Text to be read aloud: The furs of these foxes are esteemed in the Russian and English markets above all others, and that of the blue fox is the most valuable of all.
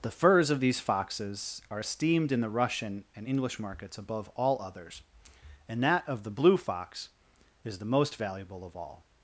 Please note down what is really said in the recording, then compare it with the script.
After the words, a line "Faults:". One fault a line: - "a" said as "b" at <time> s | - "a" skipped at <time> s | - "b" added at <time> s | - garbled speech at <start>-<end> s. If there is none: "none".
The furs of these foxes are esteemed in the Russian and English markets above all others, and that of the blue fox is the most valuable of all.
Faults:
none